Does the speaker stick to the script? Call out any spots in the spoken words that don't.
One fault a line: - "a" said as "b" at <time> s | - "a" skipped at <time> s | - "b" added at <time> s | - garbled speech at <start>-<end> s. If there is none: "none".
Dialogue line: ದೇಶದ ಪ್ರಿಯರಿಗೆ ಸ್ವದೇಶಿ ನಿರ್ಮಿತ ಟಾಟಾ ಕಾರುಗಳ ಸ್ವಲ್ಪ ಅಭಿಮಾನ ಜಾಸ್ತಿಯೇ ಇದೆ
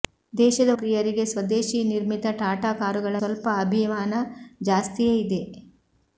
none